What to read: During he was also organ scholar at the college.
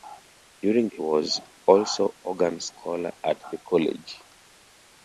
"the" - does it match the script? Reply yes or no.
yes